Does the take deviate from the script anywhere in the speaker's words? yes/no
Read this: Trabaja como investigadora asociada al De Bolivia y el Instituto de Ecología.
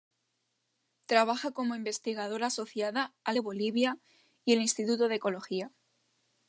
no